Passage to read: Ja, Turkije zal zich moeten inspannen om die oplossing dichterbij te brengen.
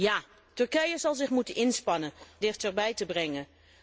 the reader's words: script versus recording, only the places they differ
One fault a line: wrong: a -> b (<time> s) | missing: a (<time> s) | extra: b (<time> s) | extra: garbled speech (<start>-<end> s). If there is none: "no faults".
missing: om die oplossing (2.1 s)